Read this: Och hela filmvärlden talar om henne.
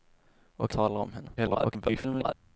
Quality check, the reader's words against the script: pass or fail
fail